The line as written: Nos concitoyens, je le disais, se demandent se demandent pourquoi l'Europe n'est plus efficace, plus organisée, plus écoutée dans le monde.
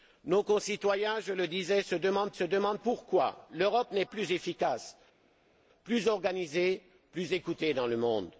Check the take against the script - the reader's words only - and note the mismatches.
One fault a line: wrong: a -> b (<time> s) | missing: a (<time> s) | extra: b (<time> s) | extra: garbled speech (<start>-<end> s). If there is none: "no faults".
no faults